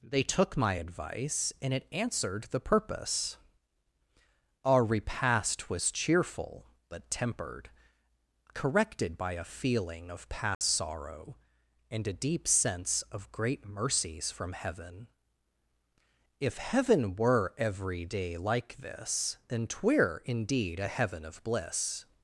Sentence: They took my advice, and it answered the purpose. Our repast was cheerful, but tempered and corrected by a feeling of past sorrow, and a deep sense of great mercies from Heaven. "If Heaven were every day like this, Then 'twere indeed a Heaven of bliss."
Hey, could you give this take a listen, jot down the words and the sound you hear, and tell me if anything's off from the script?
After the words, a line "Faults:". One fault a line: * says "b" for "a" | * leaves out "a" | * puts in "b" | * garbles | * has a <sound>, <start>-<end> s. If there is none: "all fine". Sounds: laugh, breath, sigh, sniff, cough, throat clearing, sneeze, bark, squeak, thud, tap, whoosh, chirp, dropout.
They took my advice, and it answered the purpose. Our repast was cheerful, but tempered corrected by a feeling of past sorrow, and a deep sense of great mercies from Heaven. "If Heaven were every day like this, Then 'twere indeed a Heaven of bliss."
Faults:
* leaves out "and"
* has a dropout, 10.5-10.6 s